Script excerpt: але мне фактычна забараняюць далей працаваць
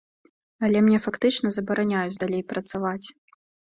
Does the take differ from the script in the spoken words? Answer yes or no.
no